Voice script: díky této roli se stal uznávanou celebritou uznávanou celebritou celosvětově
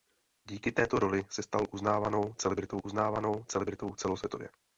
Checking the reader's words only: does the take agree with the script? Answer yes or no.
yes